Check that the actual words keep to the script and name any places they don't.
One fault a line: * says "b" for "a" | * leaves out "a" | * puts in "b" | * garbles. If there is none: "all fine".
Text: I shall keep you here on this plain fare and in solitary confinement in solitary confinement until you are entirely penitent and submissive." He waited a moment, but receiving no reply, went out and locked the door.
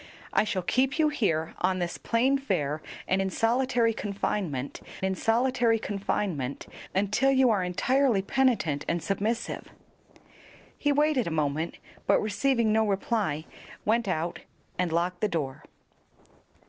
all fine